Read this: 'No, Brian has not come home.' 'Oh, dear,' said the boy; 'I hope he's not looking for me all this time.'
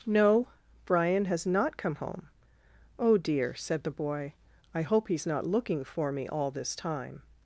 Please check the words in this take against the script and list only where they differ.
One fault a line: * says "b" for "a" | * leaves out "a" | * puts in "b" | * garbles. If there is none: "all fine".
all fine